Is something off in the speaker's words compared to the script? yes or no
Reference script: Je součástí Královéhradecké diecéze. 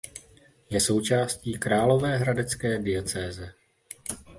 no